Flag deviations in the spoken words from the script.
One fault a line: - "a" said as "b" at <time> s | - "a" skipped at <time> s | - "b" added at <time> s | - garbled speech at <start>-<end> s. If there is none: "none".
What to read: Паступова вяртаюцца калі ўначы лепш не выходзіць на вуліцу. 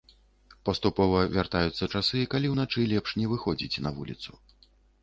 - "часы" added at 2.0 s